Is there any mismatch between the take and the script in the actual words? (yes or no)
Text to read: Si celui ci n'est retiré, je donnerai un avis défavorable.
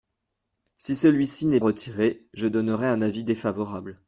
no